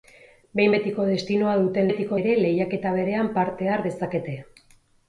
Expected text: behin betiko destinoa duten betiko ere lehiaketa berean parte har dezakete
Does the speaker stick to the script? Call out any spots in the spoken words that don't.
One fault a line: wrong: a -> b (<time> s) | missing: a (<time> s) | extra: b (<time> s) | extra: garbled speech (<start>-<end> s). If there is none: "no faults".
no faults